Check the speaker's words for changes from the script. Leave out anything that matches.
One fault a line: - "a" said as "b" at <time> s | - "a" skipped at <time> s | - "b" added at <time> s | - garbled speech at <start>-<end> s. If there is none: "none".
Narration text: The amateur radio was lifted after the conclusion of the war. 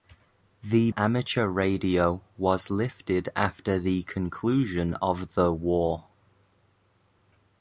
none